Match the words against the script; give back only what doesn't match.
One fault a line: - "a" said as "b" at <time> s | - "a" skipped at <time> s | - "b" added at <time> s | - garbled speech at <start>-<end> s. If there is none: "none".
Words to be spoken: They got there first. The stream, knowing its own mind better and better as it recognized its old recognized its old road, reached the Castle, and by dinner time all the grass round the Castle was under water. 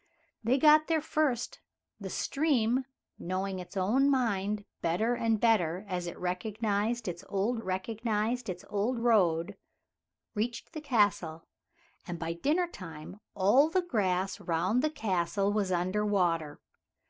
none